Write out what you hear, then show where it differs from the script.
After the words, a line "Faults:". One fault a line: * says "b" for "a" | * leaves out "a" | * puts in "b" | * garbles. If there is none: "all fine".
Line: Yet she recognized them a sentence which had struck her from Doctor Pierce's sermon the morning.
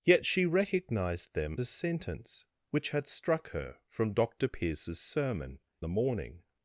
Yet she recognized them a sentence which had struck her from Doctor Pierce's sermon the morning.
Faults:
all fine